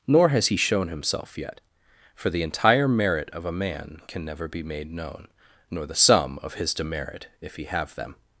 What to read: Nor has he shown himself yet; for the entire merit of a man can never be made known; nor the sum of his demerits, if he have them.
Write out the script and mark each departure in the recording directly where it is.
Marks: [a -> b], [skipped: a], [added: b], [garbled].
Nor has he shown himself yet; for the entire merit of a man can never be made known; nor the sum of his [demerits, -> demerit] if he have them.